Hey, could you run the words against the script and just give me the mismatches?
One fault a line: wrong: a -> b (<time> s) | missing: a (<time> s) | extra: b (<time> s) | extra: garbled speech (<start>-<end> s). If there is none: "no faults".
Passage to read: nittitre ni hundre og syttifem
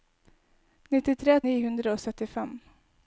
no faults